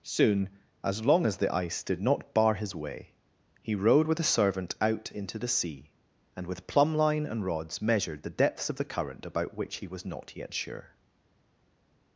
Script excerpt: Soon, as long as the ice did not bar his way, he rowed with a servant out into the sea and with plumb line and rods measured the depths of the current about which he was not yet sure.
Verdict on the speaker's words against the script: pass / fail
pass